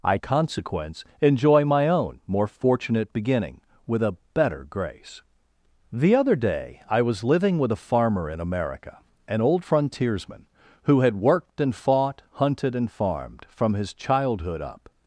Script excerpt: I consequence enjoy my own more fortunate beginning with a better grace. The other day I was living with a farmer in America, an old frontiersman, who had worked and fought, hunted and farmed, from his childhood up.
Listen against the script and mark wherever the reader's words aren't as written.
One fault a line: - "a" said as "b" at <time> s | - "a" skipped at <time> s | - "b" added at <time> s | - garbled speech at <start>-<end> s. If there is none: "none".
none